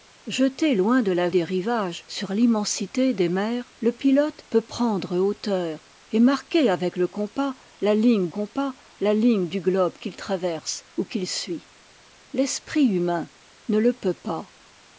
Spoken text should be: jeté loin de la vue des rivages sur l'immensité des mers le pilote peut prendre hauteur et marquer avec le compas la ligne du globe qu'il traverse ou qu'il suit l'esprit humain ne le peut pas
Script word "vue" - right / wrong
wrong